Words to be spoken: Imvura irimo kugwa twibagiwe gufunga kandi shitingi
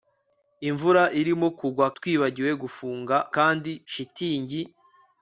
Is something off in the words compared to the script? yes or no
no